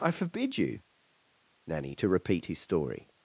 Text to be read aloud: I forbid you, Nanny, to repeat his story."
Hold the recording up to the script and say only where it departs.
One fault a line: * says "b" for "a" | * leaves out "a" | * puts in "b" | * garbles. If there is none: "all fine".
all fine